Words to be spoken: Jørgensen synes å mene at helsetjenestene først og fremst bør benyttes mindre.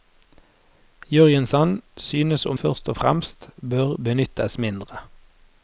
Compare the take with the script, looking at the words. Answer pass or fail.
fail